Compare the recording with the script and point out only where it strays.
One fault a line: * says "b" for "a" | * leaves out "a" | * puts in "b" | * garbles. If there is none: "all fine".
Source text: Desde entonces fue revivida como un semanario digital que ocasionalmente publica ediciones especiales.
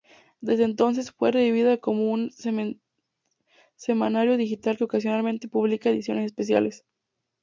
all fine